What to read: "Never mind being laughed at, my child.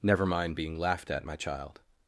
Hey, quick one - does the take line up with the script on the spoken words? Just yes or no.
yes